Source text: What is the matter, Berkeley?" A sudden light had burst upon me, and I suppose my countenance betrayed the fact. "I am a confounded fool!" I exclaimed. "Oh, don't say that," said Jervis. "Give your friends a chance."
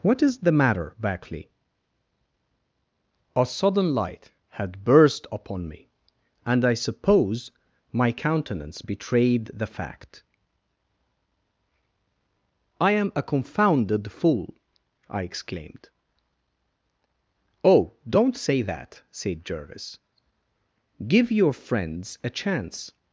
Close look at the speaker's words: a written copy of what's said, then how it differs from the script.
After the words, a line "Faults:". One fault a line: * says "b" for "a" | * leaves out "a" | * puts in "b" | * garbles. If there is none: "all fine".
What is the matter, Berkeley?" A sudden light had burst upon me, and I suppose my countenance betrayed the fact. "I am a confounded fool!" I exclaimed. "Oh, don't say that," said Jervis. "Give your friends a chance."
Faults:
all fine